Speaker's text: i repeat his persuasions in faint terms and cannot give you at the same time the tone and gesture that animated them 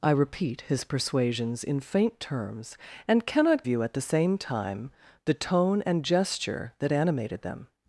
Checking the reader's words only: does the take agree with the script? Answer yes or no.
no